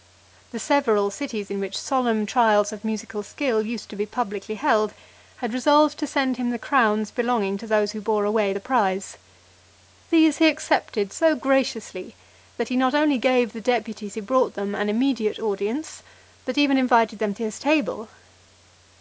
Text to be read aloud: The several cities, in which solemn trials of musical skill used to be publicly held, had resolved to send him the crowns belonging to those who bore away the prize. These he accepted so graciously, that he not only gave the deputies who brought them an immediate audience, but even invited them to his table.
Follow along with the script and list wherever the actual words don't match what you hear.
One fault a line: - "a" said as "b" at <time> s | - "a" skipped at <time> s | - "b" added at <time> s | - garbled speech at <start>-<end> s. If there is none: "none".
none